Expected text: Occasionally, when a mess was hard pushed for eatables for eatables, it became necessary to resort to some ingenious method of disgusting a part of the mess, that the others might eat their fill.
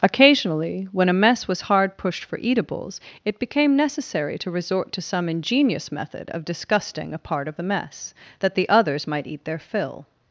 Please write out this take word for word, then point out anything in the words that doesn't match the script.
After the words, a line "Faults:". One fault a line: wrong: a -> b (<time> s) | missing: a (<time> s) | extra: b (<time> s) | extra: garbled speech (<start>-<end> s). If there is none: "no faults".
Occasionally, when a mess was hard pushed for eatables, it became necessary to resort to some ingenious method of disgusting a part of the mess, that the others might eat their fill.
Faults:
missing: for eatables (3.0 s)